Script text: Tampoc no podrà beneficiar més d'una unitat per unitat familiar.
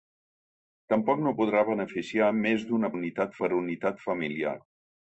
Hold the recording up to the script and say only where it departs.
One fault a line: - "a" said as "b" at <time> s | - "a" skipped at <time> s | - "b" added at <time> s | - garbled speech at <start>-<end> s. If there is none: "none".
none